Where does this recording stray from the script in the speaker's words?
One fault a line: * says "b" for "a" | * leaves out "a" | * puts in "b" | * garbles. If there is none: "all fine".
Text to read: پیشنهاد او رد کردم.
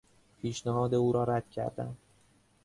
* puts in "را"